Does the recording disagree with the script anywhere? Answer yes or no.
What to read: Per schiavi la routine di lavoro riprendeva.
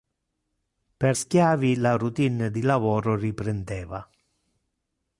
no